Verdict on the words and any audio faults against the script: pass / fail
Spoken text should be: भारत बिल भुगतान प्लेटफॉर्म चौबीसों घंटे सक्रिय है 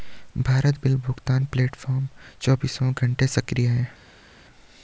pass